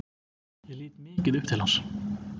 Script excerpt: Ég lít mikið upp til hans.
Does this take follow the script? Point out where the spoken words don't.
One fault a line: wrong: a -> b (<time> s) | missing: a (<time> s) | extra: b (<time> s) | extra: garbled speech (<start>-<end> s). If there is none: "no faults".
no faults